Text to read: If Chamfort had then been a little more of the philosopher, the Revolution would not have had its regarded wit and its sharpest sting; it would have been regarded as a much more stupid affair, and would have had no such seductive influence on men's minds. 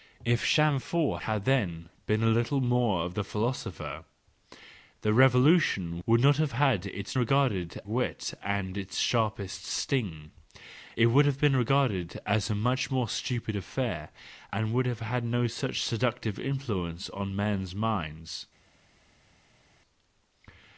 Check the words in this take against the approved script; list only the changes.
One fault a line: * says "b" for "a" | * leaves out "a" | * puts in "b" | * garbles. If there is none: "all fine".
all fine